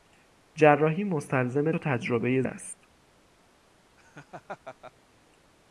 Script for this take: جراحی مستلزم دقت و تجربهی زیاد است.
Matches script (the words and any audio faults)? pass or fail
fail